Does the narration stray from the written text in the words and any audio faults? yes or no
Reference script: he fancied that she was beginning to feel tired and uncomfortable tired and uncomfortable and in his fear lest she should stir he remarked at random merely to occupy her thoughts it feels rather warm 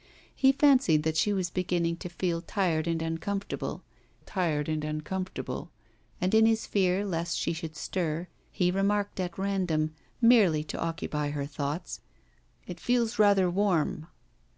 no